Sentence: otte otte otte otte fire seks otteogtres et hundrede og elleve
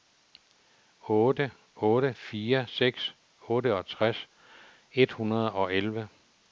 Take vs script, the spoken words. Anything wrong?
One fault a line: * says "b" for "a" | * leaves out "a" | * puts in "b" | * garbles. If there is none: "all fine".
* leaves out "otte otte"